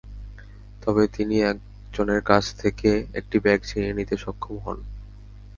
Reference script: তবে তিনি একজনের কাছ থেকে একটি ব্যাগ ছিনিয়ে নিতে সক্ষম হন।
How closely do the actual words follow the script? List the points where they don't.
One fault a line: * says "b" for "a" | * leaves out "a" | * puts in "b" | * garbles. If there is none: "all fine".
all fine